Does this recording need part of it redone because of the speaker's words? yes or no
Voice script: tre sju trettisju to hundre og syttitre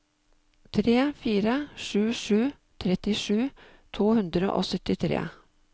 yes